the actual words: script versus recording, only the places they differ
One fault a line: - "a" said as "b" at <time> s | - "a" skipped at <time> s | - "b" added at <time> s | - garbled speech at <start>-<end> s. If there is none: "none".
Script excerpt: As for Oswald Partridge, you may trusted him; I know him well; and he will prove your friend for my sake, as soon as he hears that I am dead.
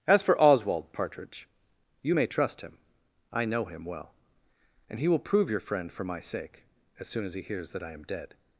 - "trusted" said as "trust" at 2.3 s